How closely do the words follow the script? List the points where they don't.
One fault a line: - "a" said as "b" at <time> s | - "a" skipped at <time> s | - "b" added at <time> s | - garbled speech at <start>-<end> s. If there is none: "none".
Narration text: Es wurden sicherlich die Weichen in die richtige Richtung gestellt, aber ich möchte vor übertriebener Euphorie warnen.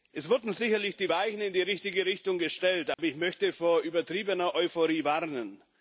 none